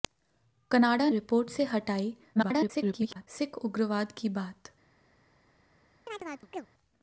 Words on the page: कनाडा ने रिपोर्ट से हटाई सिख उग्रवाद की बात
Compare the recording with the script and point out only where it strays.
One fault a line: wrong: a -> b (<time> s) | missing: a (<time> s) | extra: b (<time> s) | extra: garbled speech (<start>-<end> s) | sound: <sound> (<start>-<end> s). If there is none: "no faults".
missing: ने (1.1 s)
extra: garbled speech (2.4-3.3 s)
sound: chirp (6.1-6.7 s)